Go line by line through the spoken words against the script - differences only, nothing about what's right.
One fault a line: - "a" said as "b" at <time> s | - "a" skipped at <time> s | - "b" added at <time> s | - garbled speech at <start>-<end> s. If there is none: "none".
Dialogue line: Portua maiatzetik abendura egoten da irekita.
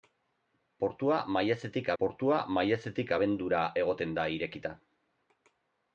- "portua maiatzetik" added at 2.0 s